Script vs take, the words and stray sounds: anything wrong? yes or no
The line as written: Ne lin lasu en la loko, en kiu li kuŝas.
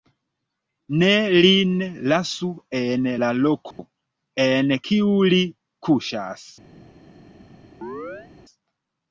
yes